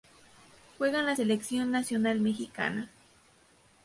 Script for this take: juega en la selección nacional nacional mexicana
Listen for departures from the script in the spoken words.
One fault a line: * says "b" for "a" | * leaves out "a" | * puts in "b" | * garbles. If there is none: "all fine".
* leaves out "nacional"